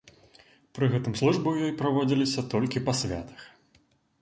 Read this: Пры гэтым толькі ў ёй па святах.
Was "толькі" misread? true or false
true